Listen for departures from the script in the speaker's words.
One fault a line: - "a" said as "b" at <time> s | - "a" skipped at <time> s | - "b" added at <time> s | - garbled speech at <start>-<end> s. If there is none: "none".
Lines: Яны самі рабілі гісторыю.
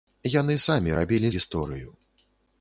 none